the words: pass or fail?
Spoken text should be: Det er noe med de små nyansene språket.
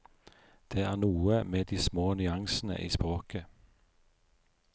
fail